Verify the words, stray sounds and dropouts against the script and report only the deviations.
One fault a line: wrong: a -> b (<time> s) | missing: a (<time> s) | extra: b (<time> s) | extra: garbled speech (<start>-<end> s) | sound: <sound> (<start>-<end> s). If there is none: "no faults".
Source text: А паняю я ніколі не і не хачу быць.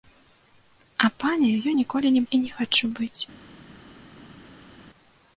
no faults